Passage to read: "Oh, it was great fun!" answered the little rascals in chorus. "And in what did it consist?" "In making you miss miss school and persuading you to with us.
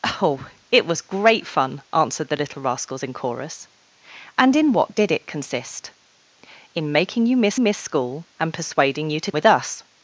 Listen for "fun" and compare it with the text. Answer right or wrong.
right